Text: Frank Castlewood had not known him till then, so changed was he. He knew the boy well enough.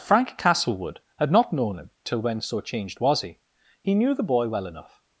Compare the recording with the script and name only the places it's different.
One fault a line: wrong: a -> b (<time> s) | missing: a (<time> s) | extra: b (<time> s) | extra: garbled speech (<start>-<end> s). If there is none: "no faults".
wrong: then -> when (2.2 s)